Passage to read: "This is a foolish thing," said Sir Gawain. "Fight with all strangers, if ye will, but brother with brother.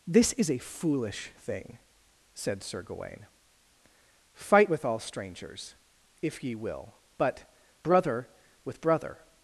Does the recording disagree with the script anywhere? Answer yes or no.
no